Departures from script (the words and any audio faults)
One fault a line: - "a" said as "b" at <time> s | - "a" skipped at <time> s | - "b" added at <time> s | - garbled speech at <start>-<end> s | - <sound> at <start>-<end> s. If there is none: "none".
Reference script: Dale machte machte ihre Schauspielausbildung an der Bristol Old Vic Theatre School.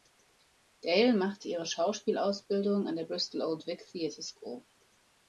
- "machte" skipped at 1.5 s